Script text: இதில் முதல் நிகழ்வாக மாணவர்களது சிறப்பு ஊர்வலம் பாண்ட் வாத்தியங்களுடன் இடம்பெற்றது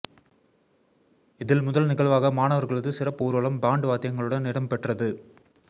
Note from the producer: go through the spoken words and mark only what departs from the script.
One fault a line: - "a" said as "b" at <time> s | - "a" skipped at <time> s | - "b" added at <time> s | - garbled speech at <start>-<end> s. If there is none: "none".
none